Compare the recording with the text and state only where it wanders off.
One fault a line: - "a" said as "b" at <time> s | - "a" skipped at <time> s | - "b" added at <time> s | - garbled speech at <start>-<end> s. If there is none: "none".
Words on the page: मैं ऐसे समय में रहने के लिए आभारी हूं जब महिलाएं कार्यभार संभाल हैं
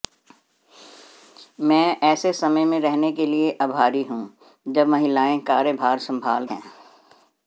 none